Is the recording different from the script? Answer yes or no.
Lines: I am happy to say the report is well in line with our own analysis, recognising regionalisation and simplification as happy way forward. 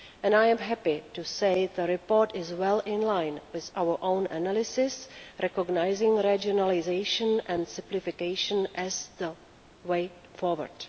yes